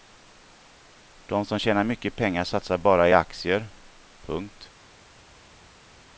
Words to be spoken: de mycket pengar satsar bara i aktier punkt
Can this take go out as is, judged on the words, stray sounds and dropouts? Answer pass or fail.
fail